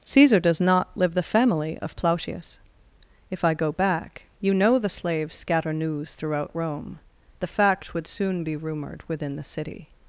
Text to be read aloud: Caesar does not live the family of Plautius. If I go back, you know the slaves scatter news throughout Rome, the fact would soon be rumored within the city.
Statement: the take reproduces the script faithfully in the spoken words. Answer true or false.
true